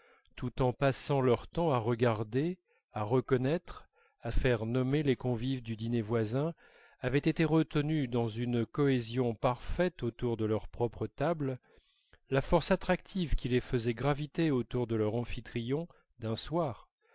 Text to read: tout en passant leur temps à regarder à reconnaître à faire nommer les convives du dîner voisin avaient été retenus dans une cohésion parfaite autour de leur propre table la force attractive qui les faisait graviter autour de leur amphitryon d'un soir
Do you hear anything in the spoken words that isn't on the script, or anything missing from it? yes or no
no